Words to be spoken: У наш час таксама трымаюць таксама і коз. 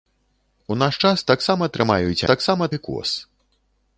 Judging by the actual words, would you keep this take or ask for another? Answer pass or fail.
pass